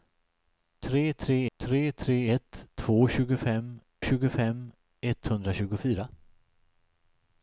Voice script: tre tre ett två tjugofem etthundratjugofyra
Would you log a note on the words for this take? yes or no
yes